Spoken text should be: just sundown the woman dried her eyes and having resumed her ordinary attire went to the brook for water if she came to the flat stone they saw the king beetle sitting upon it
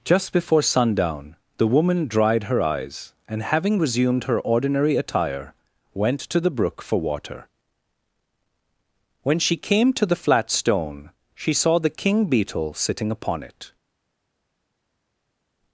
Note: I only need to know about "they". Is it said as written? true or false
false